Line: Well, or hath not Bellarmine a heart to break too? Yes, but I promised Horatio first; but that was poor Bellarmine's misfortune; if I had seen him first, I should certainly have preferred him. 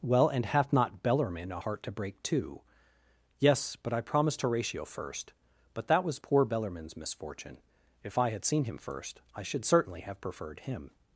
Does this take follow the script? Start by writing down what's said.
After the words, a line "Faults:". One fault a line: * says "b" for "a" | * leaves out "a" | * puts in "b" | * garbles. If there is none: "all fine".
Well, and hath not Bellarmine a heart to break too? Yes, but I promised Horatio first; but that was poor Bellarmine's misfortune; if I had seen him first, I should certainly have preferred him.
Faults:
* says "and" for "or"